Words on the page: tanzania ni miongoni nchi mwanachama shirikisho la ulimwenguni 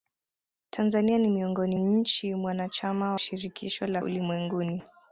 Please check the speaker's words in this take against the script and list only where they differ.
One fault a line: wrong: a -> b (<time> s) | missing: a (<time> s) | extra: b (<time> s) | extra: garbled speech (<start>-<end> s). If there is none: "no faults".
no faults